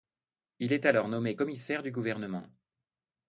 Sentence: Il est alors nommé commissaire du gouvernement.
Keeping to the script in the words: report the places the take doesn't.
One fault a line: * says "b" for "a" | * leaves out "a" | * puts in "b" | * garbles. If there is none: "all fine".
all fine